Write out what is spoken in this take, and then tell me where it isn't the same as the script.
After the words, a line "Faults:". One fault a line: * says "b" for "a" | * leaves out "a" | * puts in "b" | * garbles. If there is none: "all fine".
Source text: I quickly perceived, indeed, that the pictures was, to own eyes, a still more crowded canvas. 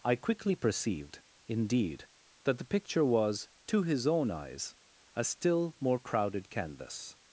I quickly perceived, indeed, that the picture was, to his own eyes, a still more crowded canvas.
Faults:
* says "picture" for "pictures"
* puts in "his"